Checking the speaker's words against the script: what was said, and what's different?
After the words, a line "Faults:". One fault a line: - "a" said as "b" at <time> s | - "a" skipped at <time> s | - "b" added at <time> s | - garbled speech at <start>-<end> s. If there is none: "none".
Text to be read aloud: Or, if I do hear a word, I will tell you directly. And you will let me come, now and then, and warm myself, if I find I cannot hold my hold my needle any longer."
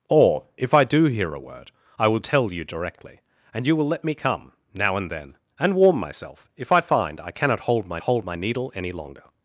Or, if I do hear a word, I will tell you directly. And you will let me come, now and then, and warm myself, if I find I cannot hold my hold my needle any longer."
Faults:
none